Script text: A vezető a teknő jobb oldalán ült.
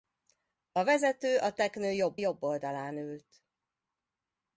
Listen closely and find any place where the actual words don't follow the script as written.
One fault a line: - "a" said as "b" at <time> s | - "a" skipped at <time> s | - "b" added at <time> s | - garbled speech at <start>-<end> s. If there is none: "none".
- "jobb" added at 2.1 s